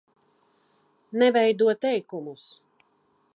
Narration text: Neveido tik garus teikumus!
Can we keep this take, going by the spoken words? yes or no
no